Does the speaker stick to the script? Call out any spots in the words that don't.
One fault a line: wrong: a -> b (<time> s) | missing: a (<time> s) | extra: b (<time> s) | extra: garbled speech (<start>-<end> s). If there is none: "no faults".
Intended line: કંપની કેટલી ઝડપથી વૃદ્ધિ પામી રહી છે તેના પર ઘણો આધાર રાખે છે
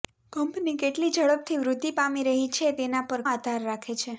missing: ઘણો (3.2 s)